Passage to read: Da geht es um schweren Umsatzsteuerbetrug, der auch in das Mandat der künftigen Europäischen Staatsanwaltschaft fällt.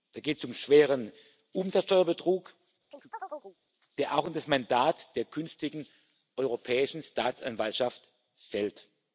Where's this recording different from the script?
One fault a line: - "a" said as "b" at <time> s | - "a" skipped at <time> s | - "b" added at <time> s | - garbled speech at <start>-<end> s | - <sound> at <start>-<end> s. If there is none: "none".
- chirp at 2.9-3.6 s